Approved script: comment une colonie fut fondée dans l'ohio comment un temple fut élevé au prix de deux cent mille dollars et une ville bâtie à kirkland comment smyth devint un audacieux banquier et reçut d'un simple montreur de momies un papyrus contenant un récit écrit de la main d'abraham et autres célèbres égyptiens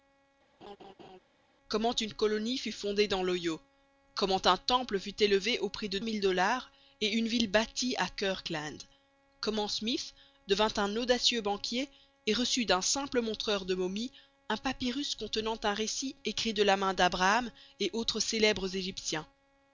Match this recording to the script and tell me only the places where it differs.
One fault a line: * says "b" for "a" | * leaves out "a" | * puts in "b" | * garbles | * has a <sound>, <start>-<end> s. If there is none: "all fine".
* has a laugh, 0.6-1.2 s
* leaves out "deux cent"